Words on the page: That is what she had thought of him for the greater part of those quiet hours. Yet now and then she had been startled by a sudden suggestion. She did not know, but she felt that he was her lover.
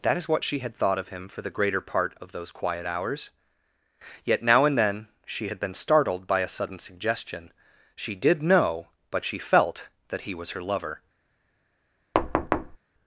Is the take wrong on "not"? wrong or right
wrong